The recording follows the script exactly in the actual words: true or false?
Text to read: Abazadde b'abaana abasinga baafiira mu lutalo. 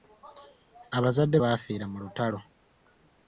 false